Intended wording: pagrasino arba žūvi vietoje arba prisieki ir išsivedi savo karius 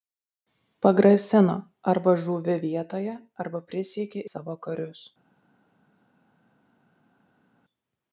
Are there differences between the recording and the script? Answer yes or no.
yes